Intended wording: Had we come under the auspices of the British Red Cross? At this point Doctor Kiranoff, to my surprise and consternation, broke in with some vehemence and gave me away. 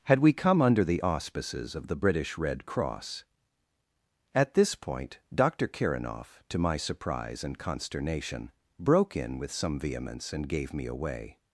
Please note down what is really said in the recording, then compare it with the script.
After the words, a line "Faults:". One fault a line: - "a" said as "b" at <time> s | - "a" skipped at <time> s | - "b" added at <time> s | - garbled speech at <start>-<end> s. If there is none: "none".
Had we come under the auspices of the British Red Cross? At this point Doctor Kiranoff, to my surprise and consternation, broke in with some vehemence and gave me away.
Faults:
none